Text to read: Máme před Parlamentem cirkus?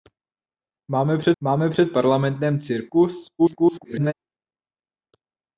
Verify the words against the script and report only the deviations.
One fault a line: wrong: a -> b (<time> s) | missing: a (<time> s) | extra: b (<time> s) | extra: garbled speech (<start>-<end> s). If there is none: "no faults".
extra: máme před (1.4 s)
extra: garbled speech (3.4-4.1 s)